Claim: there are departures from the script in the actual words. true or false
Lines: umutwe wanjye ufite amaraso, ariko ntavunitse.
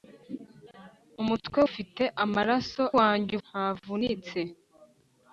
true